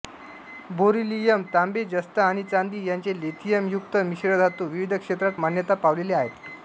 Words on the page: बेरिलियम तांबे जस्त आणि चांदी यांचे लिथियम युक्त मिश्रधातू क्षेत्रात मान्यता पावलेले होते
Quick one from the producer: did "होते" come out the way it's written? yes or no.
no